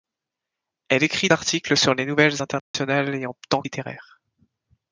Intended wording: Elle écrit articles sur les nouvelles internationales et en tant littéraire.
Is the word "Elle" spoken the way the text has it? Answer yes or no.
yes